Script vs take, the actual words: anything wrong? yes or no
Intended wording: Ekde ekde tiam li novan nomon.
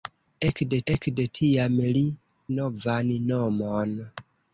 no